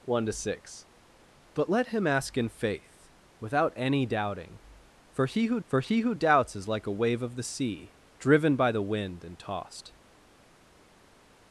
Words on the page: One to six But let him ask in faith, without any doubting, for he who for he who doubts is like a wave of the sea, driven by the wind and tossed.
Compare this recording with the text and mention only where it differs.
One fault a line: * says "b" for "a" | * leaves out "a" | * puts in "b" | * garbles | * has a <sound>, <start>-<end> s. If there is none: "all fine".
all fine